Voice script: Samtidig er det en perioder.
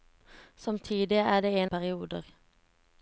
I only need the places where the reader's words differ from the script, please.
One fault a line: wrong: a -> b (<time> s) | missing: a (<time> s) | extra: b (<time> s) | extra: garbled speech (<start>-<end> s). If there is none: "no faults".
no faults